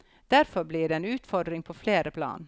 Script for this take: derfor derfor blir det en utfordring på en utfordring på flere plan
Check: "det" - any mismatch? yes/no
no